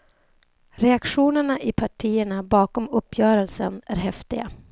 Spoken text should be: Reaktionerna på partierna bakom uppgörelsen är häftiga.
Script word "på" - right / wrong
wrong